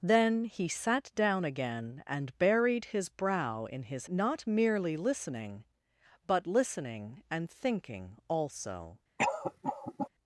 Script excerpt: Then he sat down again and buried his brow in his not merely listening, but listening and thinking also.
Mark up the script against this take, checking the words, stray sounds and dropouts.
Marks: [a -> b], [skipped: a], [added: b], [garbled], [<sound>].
Then he sat down again and buried his brow in his not merely listening, but listening and thinking also. [cough]